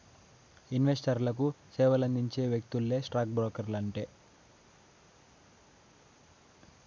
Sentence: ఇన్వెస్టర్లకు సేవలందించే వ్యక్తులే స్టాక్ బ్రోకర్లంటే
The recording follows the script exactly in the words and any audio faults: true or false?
true